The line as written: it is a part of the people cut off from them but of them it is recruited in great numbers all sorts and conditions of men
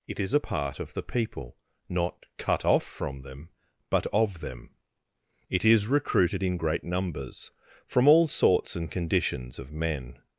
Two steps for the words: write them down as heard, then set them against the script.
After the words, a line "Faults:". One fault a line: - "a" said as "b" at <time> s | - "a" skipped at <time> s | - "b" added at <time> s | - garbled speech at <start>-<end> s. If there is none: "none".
it is a part of the people not cut off from them but of them it is recruited in great numbers from all sorts and conditions of men
Faults:
- "not" added at 1.9 s
- "from" added at 7.9 s